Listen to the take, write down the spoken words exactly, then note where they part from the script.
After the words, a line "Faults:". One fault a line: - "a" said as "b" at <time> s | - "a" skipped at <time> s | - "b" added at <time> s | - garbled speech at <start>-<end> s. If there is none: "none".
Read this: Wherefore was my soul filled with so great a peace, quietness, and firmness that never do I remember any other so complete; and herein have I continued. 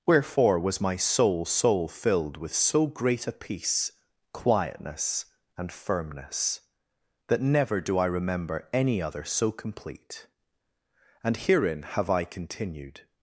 Wherefore was my soul soul filled with so great a peace, quietness, and firmness that never do I remember any other so complete; and herein have I continued.
Faults:
- "soul" added at 1.4 s